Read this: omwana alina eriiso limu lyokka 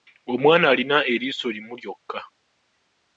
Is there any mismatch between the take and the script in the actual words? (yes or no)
no